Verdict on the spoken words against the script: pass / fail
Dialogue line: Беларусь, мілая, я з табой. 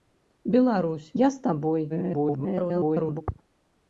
fail